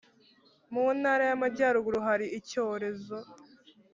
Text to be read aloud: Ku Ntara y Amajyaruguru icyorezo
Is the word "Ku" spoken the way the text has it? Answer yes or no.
no